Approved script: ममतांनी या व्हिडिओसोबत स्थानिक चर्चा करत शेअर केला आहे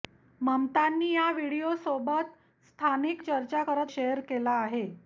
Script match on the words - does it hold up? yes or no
yes